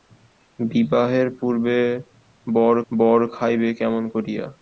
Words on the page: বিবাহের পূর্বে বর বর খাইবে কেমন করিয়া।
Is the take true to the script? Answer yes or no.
yes